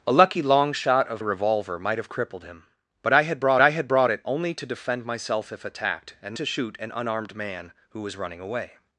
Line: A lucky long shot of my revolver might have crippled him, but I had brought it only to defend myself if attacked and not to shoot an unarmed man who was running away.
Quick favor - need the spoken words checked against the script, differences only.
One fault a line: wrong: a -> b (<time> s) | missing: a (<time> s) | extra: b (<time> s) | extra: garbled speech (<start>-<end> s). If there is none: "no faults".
missing: my (1.2 s)
extra: I had brought (3.6 s)
missing: not (6.4 s)